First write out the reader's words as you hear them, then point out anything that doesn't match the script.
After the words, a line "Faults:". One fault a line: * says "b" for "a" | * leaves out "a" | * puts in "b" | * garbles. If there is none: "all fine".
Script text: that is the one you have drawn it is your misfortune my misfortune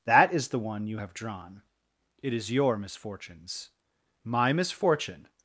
that is the one you have drawn it is your misfortunes my misfortune
Faults:
* says "misfortunes" for "misfortune"